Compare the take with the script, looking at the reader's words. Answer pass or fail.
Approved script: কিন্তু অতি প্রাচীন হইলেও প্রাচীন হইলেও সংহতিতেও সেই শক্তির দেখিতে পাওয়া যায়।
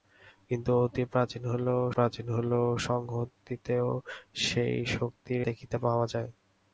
pass